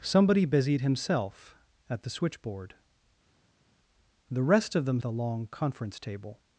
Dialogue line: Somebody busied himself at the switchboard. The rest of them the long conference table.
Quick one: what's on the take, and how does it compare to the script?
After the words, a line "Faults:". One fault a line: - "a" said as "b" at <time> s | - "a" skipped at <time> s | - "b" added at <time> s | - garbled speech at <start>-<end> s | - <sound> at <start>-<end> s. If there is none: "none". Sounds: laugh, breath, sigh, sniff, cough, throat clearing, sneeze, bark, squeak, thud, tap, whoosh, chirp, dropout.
Somebody busied himself at the switchboard. The rest of them the long conference table.
Faults:
none